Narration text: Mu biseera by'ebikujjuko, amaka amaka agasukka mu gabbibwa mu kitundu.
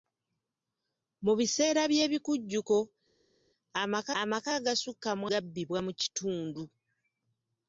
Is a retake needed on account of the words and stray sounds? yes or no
no